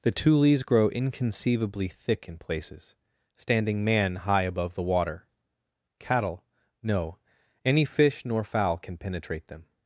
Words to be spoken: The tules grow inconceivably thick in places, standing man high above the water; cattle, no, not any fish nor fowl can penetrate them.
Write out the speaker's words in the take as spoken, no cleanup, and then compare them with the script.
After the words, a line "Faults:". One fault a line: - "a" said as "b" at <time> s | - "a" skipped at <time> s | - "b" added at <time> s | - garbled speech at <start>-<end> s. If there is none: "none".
The tules grow inconceivably thick in places, standing man high above the water; cattle, no, any fish nor fowl can penetrate them.
Faults:
- "not" skipped at 7.2 s